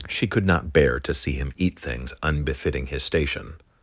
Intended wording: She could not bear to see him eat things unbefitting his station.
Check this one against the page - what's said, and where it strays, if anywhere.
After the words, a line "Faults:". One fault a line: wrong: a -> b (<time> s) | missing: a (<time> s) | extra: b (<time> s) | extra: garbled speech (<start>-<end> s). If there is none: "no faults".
She could not bear to see him eat things unbefitting his station.
Faults:
no faults